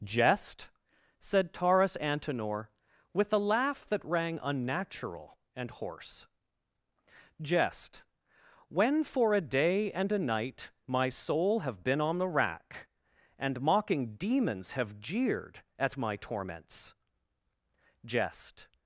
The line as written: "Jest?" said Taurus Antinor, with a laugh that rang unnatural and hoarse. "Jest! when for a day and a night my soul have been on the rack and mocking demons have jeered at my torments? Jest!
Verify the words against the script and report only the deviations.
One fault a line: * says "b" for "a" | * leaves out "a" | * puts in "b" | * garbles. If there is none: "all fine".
all fine